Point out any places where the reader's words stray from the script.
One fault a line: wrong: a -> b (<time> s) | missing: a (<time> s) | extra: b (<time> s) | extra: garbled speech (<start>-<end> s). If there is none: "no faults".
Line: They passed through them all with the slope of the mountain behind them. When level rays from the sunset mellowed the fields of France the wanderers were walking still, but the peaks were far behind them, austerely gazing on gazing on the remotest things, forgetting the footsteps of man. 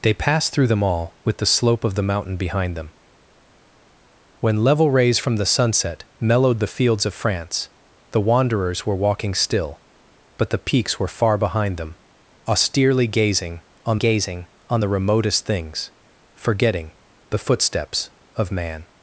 no faults